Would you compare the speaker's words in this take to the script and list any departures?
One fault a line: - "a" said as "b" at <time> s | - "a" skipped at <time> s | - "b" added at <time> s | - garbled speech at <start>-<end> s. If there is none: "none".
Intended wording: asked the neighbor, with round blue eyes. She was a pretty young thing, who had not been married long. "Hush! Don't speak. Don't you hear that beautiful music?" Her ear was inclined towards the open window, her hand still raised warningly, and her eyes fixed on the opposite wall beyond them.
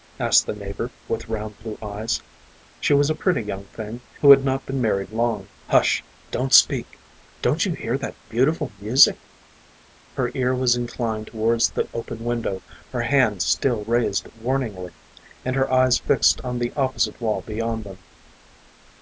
none